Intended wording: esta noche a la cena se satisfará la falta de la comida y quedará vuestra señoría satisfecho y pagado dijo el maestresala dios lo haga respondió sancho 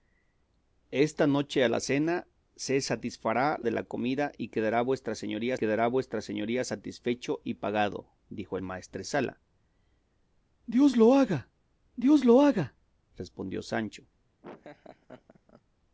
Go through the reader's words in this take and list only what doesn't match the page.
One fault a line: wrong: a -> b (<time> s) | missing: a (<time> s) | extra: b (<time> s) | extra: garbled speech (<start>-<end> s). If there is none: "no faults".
missing: la falta (3.6 s)
extra: quedará vuestra señoría (5.5 s)
extra: dios lo haga (12.0 s)